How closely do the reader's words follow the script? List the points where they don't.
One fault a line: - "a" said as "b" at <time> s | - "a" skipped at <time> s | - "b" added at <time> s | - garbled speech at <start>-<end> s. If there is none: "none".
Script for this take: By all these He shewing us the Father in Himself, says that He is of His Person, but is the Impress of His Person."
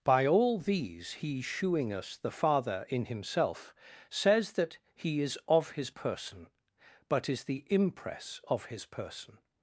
none